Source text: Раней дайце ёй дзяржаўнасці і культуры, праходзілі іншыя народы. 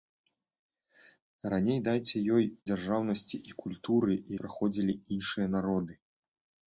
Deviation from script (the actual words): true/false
false